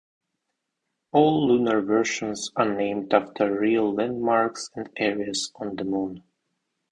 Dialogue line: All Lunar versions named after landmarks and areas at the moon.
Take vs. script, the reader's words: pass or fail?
fail